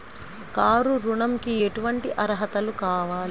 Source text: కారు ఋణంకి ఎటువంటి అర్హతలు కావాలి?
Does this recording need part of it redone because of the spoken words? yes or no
no